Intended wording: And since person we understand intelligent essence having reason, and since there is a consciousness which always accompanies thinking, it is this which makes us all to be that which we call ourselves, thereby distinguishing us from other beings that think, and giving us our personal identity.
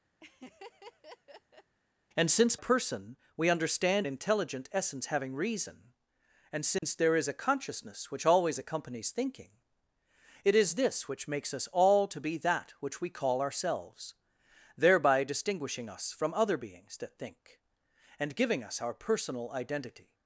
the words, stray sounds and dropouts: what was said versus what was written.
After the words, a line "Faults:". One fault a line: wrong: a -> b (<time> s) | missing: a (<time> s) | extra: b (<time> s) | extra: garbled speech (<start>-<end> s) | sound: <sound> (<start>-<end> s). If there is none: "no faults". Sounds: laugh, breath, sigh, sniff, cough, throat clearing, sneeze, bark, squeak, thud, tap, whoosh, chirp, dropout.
And since person we understand intelligent essence having reason, and since there is a consciousness which always accompanies thinking, it is this which makes us all to be that which we call ourselves, thereby distinguishing us from other beings that think, and giving us our personal identity.
Faults:
sound: laugh (0.2-1.7 s)
sound: dropout (6.8-6.8 s)